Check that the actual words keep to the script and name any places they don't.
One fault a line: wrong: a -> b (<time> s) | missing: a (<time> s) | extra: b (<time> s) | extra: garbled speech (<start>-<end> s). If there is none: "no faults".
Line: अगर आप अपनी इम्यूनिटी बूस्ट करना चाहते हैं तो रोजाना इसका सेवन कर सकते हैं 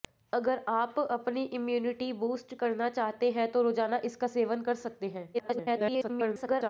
extra: garbled speech (5.3-6.7 s)